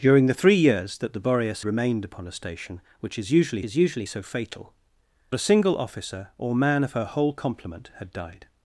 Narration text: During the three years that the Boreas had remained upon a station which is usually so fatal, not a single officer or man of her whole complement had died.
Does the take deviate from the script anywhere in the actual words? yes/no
yes